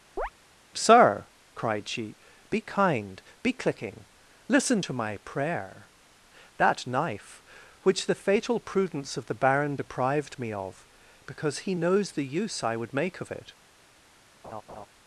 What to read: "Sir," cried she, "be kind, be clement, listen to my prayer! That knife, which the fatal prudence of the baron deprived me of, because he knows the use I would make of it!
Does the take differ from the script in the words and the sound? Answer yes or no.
yes